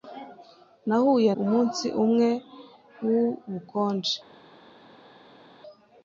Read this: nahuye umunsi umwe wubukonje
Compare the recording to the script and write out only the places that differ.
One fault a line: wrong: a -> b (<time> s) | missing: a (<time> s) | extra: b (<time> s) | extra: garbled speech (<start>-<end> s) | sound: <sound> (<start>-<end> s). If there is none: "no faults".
no faults